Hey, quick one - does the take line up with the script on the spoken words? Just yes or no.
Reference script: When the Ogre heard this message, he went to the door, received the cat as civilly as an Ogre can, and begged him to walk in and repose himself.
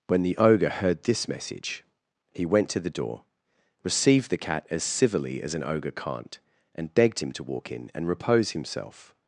no